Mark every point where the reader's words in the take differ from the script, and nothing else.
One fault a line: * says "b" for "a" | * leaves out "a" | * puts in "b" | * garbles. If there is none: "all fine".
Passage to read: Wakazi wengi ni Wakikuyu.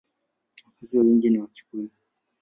all fine